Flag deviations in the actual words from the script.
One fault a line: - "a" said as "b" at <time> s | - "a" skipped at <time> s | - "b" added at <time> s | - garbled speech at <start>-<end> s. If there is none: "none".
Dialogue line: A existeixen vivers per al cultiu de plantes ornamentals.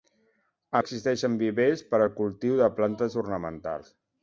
none